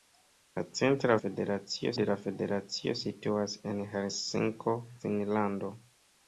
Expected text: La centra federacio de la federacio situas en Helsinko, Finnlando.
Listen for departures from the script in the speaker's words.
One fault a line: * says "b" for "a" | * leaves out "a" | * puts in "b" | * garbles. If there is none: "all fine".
all fine